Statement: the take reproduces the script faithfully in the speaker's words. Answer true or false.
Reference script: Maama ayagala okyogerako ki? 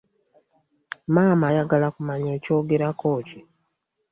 false